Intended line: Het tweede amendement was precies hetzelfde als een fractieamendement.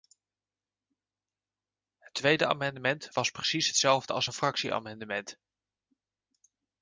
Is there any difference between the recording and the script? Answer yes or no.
no